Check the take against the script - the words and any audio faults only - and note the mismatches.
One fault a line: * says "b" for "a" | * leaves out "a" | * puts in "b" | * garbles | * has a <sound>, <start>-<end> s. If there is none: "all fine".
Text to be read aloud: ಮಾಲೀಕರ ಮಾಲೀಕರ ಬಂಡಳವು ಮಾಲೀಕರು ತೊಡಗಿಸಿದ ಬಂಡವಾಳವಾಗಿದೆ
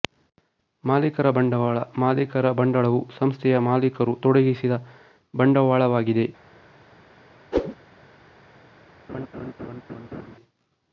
* puts in "ಬಂಡವಾಳ"
* puts in "ಸಂಸ್ಥೆಯ"
* has a whoosh, 7.5-7.7 s
* has a laugh, 9.1-10.4 s